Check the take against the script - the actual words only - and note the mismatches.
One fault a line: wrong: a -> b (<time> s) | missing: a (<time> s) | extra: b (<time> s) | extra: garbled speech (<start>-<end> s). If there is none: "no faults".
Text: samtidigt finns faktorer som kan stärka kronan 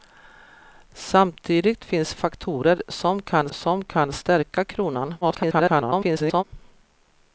extra: som kan (3.5 s)
extra: garbled speech (5.2-6.4 s)